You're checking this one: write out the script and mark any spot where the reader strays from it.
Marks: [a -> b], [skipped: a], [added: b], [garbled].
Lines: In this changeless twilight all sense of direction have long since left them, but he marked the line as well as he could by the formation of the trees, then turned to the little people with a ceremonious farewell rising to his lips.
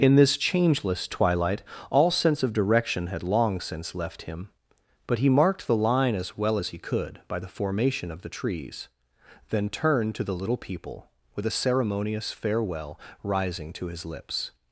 In this changeless twilight all sense of direction [have -> had] long since left [them, -> him] but he marked the line as well as he could by the formation of the trees, then turned to the little people with a ceremonious farewell rising to his lips.